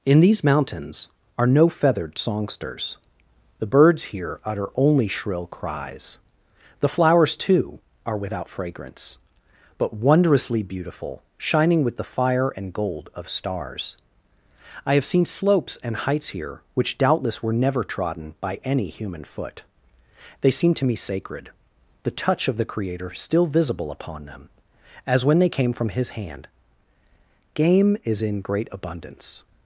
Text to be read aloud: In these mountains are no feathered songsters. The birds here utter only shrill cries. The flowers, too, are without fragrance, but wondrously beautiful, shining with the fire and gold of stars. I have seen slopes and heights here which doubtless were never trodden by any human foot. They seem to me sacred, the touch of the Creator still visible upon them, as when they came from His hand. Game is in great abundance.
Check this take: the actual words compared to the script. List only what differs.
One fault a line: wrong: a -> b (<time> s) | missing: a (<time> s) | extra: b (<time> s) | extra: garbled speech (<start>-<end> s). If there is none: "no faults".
no faults